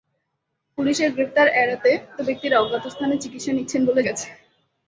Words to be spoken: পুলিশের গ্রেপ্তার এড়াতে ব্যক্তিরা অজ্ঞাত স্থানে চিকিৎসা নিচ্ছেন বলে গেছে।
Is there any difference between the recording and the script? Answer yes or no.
no